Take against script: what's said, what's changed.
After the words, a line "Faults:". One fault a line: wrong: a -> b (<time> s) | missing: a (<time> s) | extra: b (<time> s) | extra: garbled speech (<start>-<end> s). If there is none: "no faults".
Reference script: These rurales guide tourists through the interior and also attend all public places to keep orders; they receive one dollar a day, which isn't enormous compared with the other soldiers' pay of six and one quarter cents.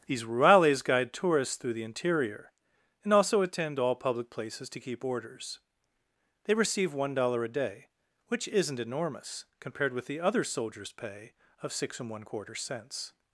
These rurales guide tourists through the interior and also attend all public places to keep orders; they receive one dollar a day, which isn't enormous compared with the other soldiers' pay of six and one quarter cents.
Faults:
no faults